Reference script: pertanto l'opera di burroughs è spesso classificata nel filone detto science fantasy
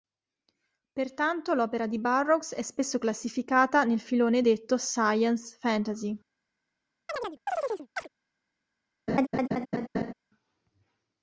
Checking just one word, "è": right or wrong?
right